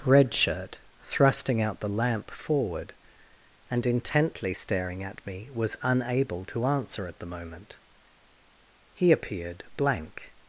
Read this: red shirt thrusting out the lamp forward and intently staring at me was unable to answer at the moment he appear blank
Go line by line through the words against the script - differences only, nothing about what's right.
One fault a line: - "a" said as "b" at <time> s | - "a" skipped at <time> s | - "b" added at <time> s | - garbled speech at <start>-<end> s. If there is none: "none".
- "appear" said as "appeared" at 9.1 s